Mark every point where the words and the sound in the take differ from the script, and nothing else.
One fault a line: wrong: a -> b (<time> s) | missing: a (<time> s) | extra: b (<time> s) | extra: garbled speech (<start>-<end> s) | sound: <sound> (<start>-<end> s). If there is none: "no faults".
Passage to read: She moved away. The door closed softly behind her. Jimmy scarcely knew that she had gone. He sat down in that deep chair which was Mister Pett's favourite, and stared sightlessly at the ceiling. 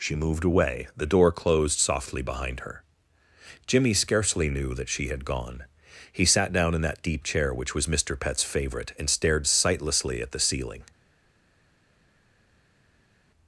no faults